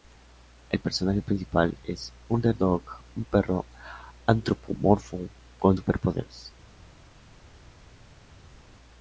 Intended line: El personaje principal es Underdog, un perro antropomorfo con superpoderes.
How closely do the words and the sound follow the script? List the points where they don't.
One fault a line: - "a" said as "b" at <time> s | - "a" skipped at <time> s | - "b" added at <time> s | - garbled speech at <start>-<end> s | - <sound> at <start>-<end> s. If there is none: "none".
none